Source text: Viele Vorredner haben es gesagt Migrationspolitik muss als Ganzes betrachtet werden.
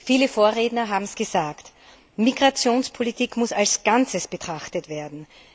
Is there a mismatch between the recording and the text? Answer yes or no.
no